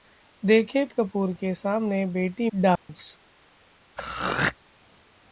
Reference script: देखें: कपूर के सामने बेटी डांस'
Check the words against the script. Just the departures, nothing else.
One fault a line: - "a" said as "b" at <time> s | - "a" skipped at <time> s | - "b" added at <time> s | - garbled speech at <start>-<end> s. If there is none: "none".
none